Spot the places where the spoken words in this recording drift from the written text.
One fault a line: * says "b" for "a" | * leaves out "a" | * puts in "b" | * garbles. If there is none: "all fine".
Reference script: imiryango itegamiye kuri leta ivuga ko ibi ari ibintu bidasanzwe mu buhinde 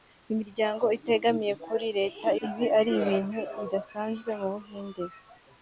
* leaves out "ivuga ko"